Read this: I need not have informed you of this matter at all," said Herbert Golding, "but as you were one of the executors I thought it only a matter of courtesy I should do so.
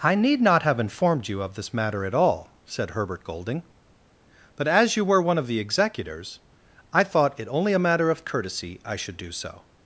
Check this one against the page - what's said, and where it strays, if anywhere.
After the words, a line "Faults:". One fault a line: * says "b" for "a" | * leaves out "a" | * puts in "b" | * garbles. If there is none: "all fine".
I need not have informed you of this matter at all," said Herbert Golding, "but as you were one of the executors I thought it only a matter of courtesy I should do so.
Faults:
all fine